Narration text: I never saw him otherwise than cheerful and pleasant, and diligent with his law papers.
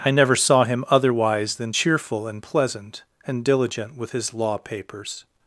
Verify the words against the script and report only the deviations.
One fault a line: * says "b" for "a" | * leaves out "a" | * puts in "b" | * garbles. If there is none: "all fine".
all fine